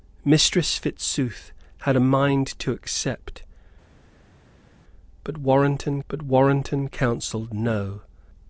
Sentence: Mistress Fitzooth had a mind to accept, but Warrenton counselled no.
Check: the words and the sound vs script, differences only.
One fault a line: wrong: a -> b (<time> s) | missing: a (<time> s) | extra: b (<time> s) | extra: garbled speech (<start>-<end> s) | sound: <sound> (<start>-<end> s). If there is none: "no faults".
extra: but Warrenton (6.1 s)